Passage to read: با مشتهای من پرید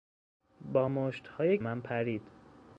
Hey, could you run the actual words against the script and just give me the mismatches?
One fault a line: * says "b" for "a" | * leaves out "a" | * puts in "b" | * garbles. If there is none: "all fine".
all fine